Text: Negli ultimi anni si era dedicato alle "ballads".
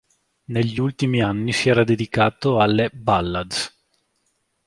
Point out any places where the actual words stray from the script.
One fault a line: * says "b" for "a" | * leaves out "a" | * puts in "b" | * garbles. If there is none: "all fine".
all fine